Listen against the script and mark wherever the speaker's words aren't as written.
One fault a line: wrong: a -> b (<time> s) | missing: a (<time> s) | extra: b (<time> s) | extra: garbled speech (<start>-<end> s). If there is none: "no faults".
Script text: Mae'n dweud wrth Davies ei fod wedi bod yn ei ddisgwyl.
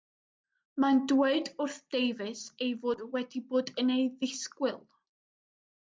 no faults